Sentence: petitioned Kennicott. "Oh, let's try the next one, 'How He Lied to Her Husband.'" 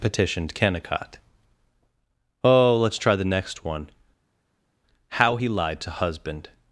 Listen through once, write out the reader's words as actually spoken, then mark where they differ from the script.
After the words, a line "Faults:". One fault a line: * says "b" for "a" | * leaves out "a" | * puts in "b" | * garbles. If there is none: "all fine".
petitioned Kennicott. "Oh, let's try the next one, 'How He Lied to Husband.'"
Faults:
* leaves out "Her"